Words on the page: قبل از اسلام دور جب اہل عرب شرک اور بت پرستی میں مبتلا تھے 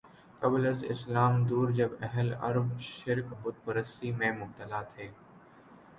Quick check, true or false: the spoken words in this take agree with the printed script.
false